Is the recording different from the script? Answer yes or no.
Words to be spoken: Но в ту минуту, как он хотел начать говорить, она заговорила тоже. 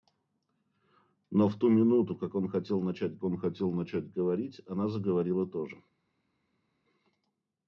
yes